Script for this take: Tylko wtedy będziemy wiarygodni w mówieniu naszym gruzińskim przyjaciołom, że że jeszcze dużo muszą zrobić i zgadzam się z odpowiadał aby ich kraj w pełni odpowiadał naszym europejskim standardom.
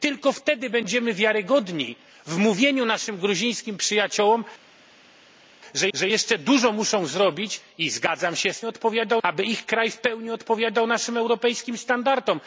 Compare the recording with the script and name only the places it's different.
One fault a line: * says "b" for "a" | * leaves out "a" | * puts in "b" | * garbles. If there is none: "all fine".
all fine